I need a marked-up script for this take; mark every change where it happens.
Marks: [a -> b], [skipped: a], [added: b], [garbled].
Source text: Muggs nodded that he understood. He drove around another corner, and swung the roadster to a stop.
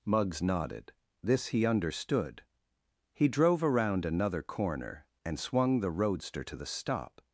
Muggs nodded [that -> this] he understood. He drove around another corner, and swung the roadster to [a -> the] stop.